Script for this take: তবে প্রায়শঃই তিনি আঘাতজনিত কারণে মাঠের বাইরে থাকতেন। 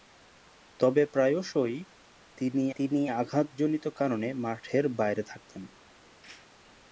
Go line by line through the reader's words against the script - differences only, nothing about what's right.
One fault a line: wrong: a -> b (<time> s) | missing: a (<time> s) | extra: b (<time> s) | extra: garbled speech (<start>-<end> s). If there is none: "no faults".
extra: তিনি (2.8 s)